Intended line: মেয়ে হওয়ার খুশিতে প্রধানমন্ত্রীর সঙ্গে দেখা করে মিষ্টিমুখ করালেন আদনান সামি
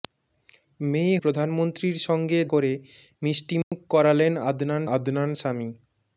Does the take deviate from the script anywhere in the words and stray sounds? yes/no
yes